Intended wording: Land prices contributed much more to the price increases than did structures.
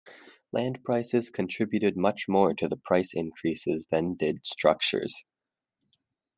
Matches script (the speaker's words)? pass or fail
pass